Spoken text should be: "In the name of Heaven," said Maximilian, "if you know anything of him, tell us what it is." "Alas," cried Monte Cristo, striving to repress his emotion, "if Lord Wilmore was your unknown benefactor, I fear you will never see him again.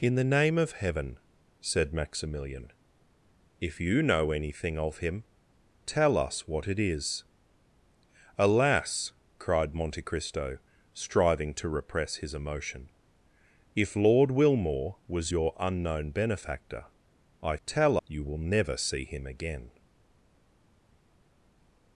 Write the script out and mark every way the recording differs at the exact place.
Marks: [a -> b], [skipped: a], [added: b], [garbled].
"In the name of Heaven," said Maximilian, "if you know anything of him, tell us what it is." "Alas," cried Monte Cristo, striving to repress his emotion, "if Lord Wilmore was your unknown benefactor, I [fear -> tell] you will never see him again.